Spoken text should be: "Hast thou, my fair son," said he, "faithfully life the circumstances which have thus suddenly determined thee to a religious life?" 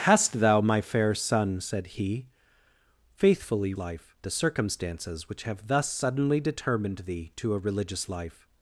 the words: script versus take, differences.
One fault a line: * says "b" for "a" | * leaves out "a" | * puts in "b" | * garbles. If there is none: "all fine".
all fine